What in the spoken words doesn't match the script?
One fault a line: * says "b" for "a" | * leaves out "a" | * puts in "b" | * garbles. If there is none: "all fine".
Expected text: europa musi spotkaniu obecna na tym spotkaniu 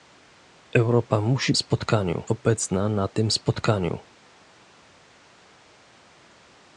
all fine